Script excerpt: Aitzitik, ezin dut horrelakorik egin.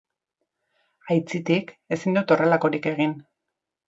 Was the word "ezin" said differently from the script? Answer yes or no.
no